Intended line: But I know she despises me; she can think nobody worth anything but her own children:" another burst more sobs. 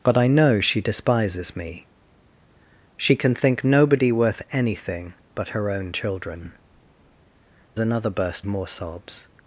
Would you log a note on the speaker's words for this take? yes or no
no